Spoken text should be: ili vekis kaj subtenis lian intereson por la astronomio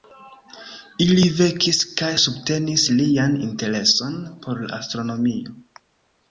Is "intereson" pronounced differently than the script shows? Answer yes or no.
no